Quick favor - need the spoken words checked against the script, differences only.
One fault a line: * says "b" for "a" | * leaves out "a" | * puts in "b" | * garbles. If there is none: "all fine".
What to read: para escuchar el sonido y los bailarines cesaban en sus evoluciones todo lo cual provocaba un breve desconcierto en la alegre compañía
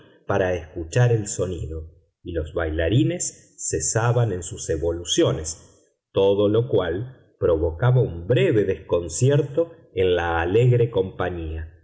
all fine